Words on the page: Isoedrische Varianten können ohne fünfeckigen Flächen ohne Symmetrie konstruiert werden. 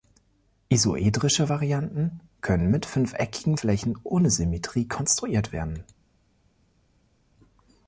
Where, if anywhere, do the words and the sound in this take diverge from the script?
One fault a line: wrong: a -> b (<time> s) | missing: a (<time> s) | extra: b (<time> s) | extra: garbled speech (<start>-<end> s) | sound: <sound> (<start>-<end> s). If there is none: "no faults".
wrong: ohne -> mit (2.7 s)